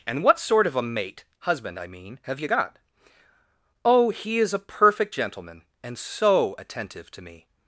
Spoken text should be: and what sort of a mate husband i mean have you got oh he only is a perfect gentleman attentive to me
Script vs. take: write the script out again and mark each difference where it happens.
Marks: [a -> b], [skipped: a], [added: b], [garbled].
and what sort of a mate husband i mean have you got oh he [skipped: only] is a perfect gentleman [added: and so] attentive to me